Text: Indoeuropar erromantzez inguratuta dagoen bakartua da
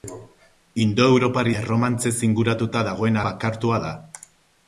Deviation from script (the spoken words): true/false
false